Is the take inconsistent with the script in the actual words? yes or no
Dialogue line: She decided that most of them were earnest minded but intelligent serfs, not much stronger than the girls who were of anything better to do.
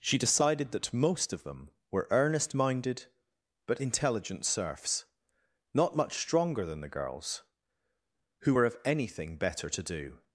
no